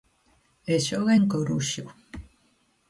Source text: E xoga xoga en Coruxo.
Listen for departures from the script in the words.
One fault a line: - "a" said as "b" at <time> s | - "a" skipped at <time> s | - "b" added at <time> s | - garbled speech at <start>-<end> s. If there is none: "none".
- "xoga" skipped at 1.1 s